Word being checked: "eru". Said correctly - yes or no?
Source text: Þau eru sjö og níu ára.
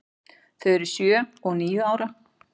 yes